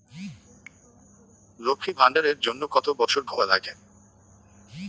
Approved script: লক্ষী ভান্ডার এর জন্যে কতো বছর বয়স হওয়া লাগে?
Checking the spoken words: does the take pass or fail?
fail